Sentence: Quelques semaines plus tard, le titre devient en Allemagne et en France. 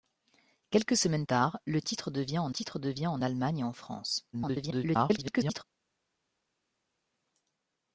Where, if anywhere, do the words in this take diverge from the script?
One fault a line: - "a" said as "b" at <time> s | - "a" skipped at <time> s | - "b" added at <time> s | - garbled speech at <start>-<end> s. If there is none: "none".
- "plus" skipped at 1.2 s
- "titre devient en" added at 2.5 s
- garbled speech at 4.3-5.6 s